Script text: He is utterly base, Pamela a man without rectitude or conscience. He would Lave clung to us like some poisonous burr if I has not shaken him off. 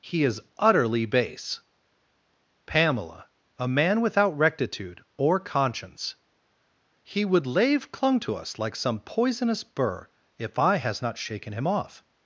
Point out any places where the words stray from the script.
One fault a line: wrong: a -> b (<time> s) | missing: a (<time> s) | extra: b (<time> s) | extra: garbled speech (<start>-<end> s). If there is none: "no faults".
no faults